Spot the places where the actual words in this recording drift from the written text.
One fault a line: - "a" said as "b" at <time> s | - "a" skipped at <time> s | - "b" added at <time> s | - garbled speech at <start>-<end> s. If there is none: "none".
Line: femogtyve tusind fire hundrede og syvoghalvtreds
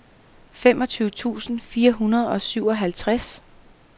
none